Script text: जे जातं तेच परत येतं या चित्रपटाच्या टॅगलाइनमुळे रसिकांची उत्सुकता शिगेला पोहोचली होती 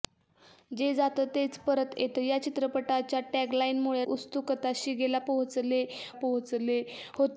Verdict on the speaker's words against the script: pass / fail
fail